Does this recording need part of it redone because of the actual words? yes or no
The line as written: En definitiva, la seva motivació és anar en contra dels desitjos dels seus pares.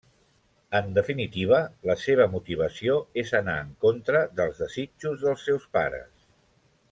no